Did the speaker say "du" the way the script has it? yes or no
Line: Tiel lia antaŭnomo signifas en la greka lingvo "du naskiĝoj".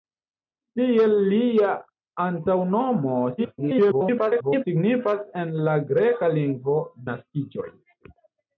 no